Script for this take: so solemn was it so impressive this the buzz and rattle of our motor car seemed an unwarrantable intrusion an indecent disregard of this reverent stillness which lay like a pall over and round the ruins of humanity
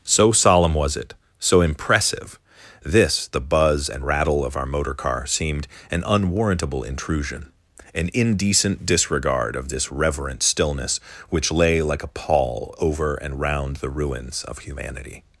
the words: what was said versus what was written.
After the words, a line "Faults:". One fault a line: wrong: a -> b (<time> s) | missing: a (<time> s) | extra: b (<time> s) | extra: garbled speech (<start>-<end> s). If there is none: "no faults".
so solemn was it so impressive this the buzz and rattle of our motor car seemed an unwarrantable intrusion an indecent disregard of this reverent stillness which lay like a pall over and round the ruins of humanity
Faults:
no faults